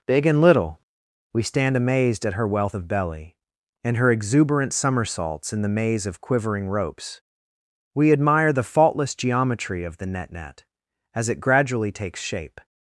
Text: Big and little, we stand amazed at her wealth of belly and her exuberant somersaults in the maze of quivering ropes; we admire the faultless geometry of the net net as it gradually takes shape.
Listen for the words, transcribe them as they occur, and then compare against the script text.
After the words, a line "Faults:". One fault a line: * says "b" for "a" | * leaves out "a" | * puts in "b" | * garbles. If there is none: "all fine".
Big and little, we stand amazed at her wealth of belly and her exuberant somersaults in the maze of quivering ropes; we admire the faultless geometry of the net net as it gradually takes shape.
Faults:
all fine